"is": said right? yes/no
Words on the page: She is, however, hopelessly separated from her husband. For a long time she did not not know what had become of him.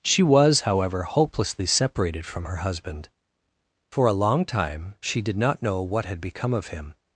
no